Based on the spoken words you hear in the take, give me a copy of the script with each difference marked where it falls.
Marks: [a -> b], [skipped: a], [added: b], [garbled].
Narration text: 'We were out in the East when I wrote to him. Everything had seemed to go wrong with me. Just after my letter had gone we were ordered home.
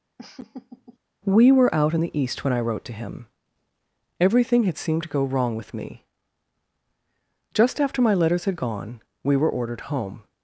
'We were out in the East when I wrote to him. Everything had seemed to go wrong with me. Just after my [letter -> letters] had gone we were ordered home.